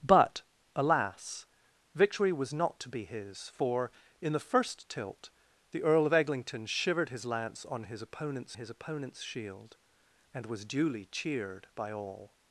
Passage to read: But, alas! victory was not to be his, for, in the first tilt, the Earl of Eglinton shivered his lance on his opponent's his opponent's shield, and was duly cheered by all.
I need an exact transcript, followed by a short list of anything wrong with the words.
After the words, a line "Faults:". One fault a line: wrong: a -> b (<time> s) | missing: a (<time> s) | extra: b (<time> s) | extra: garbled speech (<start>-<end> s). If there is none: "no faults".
But, alas! victory was not to be his, for, in the first tilt, the Earl of Eglinton shivered his lance on his opponent's his opponent's shield, and was duly cheered by all.
Faults:
no faults